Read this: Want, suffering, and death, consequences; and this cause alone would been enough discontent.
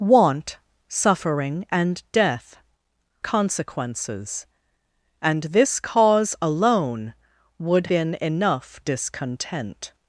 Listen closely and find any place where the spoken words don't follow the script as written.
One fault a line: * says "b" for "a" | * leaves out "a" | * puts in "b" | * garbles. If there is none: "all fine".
all fine